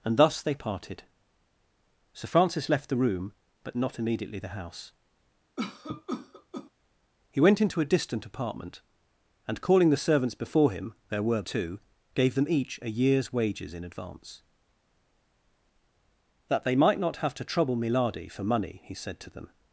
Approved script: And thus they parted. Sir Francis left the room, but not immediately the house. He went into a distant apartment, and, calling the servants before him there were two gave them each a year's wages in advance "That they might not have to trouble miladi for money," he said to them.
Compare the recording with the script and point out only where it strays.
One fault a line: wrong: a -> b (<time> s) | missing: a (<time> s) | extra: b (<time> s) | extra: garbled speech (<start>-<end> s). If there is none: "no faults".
no faults